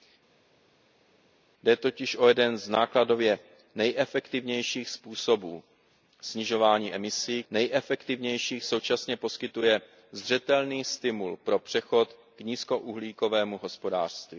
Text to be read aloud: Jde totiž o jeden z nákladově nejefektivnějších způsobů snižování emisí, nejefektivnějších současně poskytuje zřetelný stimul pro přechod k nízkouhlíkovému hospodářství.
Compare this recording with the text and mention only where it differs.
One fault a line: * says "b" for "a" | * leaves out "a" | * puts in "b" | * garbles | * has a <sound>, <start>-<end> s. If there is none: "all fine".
all fine